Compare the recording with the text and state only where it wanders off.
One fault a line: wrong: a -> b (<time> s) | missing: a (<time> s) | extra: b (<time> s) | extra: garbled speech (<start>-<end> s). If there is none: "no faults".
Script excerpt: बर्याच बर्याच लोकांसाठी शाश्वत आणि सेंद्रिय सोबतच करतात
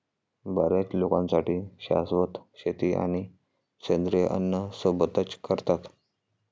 missing: बर्याच (0.9 s)
extra: शेती (2.5 s)
extra: अन्न (4.3 s)